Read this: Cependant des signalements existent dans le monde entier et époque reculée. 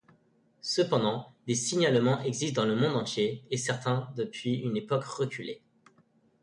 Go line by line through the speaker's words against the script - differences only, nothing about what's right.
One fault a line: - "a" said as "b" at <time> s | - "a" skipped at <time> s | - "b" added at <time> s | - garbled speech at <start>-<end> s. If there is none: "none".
- "certains depuis une" added at 3.6 s